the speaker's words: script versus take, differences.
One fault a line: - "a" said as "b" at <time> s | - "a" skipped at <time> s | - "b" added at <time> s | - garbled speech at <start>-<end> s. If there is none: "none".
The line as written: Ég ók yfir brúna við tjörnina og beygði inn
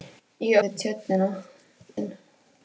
- "ók yfir brúna" skipped at 0.6 s
- "og beygði" skipped at 1.3 s